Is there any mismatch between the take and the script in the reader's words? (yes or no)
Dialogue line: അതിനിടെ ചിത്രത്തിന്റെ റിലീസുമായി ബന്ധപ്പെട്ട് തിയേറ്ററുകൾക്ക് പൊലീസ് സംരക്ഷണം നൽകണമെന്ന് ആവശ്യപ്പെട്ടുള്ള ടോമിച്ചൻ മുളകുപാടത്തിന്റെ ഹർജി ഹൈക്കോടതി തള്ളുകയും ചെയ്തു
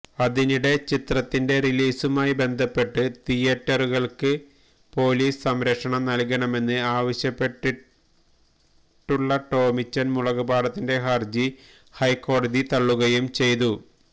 no